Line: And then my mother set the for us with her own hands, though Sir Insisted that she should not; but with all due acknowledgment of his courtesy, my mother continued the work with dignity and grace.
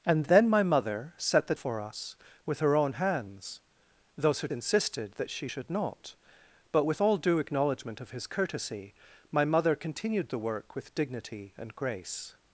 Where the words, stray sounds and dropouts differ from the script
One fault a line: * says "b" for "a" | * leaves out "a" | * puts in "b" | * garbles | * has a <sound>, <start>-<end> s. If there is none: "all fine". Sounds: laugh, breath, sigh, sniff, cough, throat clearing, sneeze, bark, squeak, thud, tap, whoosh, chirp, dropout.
all fine